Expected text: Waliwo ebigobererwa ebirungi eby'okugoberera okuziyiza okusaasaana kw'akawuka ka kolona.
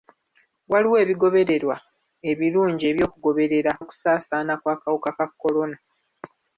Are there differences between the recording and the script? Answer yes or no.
yes